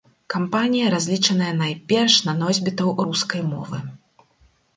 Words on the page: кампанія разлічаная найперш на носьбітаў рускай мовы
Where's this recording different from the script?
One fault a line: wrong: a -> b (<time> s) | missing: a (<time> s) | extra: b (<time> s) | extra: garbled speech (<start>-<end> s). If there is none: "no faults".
no faults